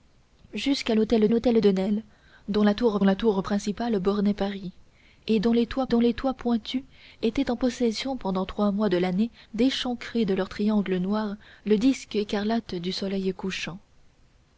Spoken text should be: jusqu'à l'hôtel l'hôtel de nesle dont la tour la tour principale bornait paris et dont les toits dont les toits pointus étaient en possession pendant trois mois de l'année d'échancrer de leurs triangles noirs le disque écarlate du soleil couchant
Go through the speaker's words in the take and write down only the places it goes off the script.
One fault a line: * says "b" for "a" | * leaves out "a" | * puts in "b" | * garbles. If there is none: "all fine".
all fine